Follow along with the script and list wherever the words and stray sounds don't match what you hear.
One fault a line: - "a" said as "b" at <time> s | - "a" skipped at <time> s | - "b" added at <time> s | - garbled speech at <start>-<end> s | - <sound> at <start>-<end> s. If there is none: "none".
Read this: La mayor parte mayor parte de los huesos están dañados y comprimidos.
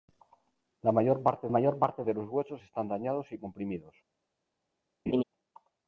- laugh at 5.1-5.2 s